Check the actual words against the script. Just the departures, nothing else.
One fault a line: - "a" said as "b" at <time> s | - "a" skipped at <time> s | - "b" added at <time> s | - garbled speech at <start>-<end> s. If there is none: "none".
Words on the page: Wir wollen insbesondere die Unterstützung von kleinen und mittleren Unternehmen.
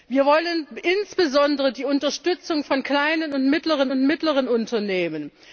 - "und mittleren" added at 3.9 s